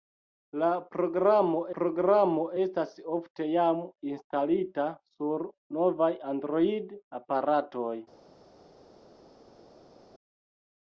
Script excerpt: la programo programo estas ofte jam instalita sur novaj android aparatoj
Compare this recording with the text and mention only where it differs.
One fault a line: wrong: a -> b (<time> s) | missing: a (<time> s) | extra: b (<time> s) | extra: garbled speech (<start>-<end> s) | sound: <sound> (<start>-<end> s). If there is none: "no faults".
no faults